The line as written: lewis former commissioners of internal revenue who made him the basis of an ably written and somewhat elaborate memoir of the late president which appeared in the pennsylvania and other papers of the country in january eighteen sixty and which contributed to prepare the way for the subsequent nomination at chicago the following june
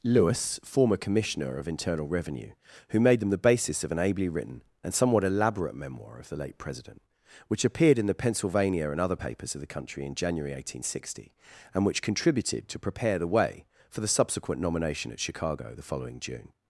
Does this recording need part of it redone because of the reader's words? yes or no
yes